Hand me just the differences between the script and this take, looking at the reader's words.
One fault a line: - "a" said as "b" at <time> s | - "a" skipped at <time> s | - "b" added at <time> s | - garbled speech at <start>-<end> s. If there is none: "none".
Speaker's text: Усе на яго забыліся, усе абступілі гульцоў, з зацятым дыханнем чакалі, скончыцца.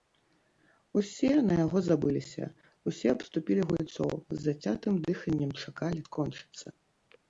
none